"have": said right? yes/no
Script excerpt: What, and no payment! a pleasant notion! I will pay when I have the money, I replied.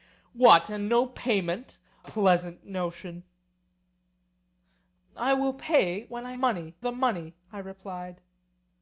no